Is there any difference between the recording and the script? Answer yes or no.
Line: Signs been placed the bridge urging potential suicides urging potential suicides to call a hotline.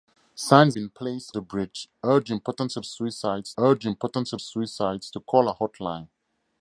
no